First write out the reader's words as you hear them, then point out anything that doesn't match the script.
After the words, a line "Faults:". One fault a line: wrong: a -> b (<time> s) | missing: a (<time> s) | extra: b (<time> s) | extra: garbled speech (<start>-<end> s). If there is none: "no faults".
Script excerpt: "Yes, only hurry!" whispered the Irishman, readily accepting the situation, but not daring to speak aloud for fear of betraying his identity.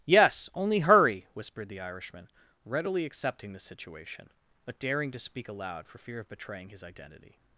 "Yes, only hurry!" whispered the Irishman, readily accepting the situation, but daring to speak aloud for fear of betraying his identity.
Faults:
missing: not (4.8 s)